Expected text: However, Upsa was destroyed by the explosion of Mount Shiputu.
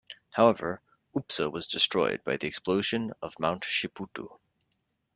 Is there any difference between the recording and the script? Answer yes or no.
no